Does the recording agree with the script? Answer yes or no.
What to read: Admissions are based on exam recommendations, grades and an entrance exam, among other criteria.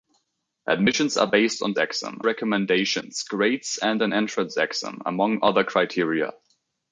yes